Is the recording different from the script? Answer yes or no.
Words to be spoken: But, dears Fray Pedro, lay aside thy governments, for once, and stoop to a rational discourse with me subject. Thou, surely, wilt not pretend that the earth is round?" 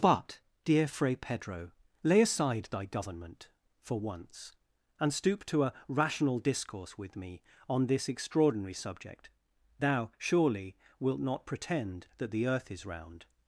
yes